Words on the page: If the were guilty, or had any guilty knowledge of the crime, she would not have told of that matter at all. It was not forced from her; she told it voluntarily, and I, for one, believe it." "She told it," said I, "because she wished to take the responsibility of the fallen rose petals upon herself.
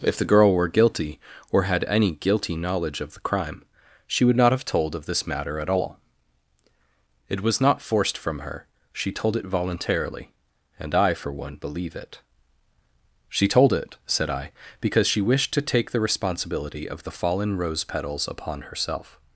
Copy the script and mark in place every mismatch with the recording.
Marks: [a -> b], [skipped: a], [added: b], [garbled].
If the [added: girl] were guilty, or had any guilty knowledge of the crime, she would not have told of [that -> this] matter at all. It was not forced from her; she told it voluntarily, and I, for one, believe it." "She told it," said I, "because she wished to take the responsibility of the fallen rose petals upon herself.